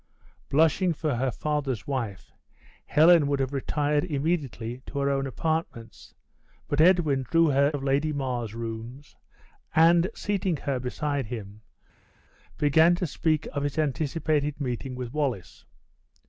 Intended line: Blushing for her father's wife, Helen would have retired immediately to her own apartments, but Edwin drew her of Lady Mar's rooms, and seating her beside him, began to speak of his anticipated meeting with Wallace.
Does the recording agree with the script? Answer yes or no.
yes